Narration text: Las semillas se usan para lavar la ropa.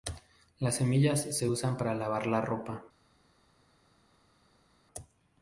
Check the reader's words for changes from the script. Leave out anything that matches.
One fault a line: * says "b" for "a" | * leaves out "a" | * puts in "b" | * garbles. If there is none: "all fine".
all fine